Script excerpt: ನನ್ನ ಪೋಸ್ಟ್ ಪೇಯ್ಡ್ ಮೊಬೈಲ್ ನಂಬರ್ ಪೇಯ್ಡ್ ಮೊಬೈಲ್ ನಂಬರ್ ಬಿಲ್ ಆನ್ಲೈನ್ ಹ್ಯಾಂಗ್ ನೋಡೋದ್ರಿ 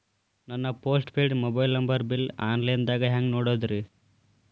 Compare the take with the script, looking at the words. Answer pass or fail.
fail